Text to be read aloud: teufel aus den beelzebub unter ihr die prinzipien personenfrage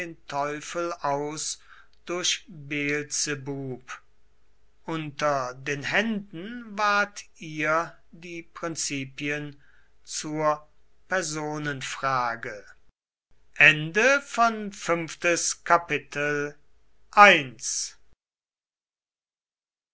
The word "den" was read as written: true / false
false